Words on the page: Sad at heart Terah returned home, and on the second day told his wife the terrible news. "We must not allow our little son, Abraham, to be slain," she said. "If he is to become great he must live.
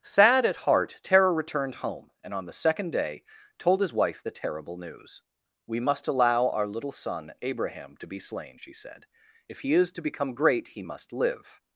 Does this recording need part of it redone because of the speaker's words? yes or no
yes